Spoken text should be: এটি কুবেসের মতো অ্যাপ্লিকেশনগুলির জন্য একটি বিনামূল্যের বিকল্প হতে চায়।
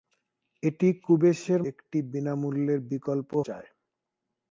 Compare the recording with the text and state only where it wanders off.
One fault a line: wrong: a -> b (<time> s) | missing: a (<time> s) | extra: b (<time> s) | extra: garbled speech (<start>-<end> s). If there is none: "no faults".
missing: মতো অ্যাপ্লিকেশনগুলির জন্য (1.6 s)
missing: হতে (3.3 s)